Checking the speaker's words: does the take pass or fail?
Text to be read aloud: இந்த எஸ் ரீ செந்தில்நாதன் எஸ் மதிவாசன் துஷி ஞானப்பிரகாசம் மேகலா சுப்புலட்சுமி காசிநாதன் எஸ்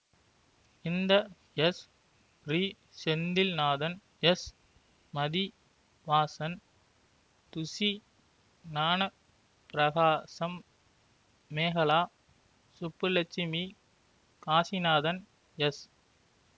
pass